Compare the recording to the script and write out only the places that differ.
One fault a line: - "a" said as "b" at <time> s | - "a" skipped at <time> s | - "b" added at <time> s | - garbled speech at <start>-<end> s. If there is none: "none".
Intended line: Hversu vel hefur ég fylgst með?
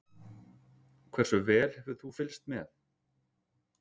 - "ég" said as "þú" at 2.0 s